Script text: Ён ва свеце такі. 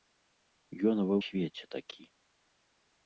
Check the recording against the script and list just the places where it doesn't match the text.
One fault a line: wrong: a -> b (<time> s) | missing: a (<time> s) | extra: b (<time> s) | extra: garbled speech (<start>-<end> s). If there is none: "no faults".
no faults